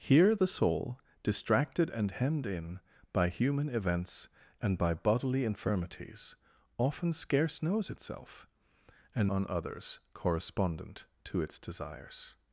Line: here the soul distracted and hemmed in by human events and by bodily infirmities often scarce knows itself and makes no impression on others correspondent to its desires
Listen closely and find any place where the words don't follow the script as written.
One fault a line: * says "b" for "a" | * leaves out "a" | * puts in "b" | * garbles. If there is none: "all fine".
* leaves out "makes no impression"